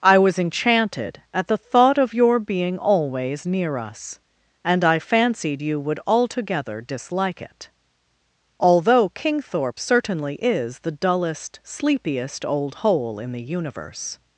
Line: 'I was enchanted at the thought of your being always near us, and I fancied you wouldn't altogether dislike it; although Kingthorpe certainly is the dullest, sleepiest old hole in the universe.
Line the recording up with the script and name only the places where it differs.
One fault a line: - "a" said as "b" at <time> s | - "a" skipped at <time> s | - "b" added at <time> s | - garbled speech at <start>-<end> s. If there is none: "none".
- "wouldn't" said as "would" at 5.8 s